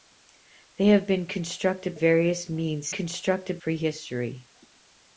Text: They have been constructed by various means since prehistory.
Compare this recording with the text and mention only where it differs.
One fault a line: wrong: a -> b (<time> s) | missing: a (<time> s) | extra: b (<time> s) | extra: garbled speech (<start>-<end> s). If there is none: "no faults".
missing: by (1.9 s)
wrong: since -> constructed (2.9 s)